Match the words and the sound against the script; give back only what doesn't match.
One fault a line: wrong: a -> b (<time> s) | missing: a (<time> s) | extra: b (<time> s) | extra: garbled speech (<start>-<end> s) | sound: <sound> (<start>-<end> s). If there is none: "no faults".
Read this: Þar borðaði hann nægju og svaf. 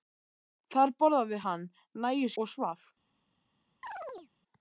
sound: chirp (3.8-4.3 s)